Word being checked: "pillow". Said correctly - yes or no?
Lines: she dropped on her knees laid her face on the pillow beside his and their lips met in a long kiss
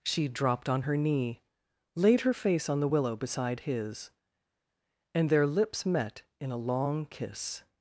no